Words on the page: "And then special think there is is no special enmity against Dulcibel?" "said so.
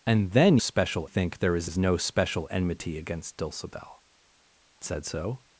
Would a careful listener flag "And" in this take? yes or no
no